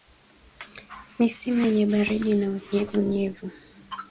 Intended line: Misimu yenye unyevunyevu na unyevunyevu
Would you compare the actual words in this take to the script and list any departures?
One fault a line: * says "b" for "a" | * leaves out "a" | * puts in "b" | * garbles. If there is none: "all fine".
* says "baridi" for "unyevunyevu"